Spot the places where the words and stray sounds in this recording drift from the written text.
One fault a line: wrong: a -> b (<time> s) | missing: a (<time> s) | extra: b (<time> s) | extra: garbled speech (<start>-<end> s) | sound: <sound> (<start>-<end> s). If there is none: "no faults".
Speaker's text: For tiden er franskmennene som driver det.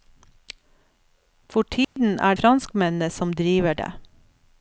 sound: dropout (1.8-2.0 s)